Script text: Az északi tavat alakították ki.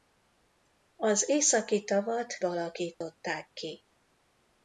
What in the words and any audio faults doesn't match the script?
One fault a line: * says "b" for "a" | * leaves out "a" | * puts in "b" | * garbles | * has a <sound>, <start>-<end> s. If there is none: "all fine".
* has a dropout, 2.9-3.0 s